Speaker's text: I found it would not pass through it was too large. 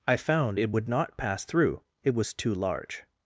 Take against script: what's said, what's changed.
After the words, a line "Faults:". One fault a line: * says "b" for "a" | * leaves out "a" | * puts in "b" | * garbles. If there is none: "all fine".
I found it would not pass through it was too large.
Faults:
all fine